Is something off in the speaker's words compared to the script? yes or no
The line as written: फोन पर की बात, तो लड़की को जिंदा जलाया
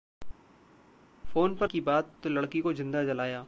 no